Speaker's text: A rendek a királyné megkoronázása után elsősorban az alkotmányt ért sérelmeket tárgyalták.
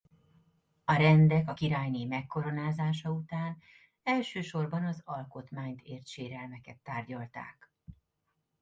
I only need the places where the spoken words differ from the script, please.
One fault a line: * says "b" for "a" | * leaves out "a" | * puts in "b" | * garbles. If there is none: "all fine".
all fine